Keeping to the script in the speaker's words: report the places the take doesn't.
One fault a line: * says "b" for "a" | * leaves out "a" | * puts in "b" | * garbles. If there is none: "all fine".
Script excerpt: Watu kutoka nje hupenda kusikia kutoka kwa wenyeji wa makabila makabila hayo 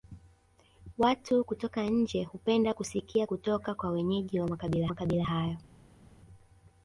all fine